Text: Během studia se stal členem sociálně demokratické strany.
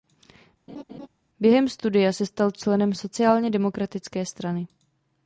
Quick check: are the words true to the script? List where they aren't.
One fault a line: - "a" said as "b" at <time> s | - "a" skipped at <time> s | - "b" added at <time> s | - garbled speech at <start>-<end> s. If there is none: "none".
none